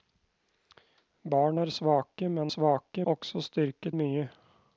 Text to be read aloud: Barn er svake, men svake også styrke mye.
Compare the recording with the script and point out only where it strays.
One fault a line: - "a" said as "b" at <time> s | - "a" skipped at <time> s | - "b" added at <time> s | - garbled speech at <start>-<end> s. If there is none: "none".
none